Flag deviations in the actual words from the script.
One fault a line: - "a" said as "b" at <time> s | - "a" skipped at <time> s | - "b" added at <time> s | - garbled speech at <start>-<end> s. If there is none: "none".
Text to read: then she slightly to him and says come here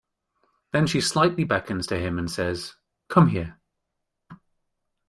- "beckons" added at 1.4 s